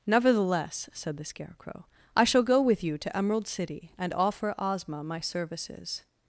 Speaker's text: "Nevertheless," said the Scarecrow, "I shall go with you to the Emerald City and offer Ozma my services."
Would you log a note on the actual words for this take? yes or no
yes